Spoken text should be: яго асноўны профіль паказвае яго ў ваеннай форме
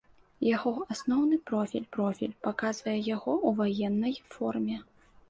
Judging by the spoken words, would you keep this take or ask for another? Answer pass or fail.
fail